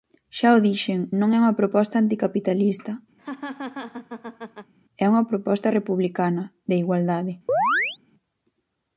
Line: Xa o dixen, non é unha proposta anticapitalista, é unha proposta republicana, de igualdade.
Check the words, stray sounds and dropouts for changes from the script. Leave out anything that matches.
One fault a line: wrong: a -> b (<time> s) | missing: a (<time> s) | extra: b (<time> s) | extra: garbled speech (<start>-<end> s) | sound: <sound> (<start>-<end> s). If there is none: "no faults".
sound: laugh (3.2-4.7 s)
sound: chirp (7.5-8.0 s)